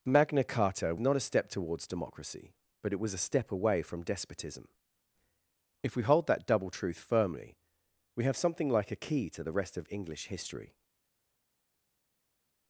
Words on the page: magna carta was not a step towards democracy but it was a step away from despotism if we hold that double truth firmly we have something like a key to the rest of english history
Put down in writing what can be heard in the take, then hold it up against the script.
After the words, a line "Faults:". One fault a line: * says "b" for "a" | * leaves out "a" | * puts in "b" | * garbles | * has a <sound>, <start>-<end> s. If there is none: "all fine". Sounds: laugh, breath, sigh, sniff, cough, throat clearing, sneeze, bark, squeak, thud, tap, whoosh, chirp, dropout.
magna carta not a step towards democracy but it was a step away from despotism if we hold that double truth firmly we have something like a key to the rest of english history
Faults:
* leaves out "was"